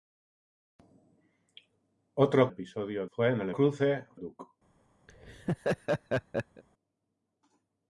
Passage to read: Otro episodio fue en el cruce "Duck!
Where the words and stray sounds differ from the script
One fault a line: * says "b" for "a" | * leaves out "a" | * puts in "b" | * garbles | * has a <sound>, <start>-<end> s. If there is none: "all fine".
* has a laugh, 5.1-6.6 s